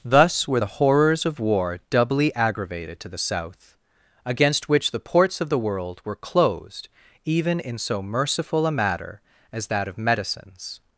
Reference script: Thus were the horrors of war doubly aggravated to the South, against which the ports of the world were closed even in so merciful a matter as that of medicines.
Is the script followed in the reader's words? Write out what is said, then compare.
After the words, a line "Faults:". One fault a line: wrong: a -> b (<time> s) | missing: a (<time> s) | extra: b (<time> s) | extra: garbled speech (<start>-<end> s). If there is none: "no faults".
Thus were the horrors of war doubly aggravated to the South, against which the ports of the world were closed even in so merciful a matter as that of medicines.
Faults:
no faults